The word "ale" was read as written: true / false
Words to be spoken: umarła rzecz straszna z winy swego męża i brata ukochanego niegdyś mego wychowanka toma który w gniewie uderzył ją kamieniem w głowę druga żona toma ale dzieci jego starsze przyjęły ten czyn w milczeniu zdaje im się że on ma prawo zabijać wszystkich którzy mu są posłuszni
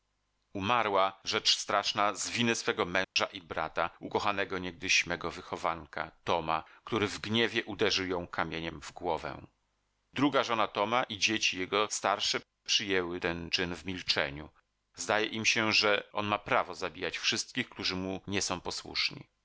false